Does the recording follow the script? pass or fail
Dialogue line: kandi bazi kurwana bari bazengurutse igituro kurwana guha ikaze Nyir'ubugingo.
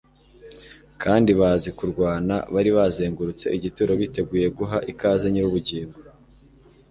fail